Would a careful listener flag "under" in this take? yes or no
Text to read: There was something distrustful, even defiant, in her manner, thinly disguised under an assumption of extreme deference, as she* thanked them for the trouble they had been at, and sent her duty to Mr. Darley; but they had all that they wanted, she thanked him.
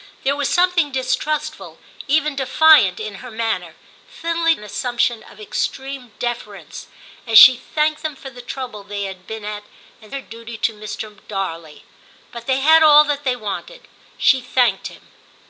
yes